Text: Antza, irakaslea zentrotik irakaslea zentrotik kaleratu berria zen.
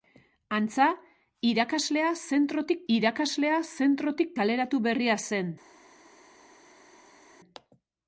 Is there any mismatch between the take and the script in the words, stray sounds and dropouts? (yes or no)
no